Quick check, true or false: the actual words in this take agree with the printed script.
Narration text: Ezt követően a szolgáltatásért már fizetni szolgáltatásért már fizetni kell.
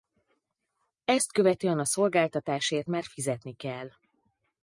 false